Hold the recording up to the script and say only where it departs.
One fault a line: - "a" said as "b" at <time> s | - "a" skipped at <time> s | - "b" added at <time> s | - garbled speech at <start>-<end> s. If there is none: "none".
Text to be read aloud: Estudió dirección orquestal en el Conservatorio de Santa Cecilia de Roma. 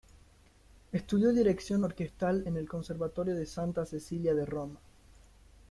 none